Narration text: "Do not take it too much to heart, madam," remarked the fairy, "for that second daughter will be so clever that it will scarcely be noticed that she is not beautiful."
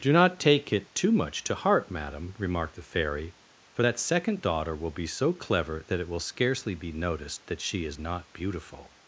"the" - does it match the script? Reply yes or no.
yes